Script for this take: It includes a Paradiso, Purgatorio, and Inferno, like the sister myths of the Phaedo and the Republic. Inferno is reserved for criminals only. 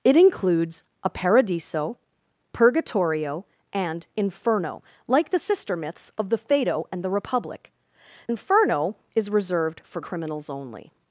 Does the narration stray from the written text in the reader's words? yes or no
no